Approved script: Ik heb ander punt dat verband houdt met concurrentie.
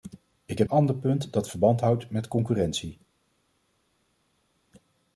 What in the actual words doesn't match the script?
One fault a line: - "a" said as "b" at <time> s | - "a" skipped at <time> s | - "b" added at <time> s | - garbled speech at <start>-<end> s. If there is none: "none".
none